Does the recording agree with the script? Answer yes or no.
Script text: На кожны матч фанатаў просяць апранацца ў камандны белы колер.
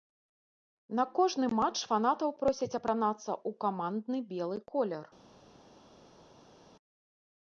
yes